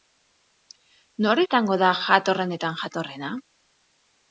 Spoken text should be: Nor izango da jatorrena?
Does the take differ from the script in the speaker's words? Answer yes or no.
yes